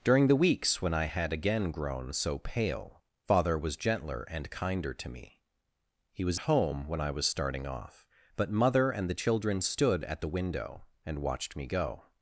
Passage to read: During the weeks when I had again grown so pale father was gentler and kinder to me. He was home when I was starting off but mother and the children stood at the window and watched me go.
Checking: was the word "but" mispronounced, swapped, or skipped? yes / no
no